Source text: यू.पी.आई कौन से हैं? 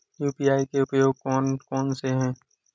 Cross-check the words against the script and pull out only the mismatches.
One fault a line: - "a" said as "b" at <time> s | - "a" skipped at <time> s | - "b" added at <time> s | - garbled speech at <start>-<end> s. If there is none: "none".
- "के उपयोग कौन" added at 0.7 s